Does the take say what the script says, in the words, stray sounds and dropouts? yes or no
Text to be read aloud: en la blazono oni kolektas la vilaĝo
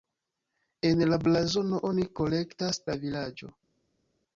yes